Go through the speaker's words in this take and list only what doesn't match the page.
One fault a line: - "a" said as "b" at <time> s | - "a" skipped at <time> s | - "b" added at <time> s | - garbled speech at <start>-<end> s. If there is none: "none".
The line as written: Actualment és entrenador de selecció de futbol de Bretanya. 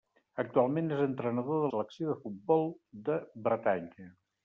none